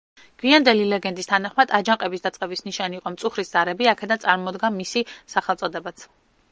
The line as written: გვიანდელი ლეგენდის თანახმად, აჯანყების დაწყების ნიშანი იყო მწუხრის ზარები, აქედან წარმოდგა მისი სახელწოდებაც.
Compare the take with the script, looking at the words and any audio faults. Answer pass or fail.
pass